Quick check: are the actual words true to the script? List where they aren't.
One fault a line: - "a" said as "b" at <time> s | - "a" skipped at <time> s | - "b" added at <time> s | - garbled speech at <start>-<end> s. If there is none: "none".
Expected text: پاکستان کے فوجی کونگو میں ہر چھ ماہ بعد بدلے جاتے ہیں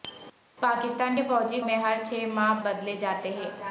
- "کونگو" skipped at 1.6 s
- "بعد" skipped at 2.6 s